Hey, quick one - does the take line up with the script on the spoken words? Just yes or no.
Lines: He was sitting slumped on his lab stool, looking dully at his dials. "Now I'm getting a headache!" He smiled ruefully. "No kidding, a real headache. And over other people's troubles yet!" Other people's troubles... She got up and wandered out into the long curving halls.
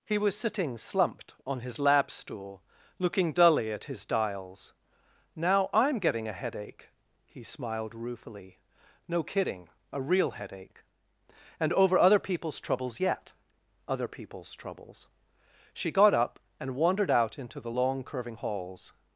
yes